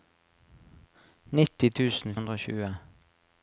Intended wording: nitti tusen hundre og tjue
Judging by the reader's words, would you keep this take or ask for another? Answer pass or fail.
pass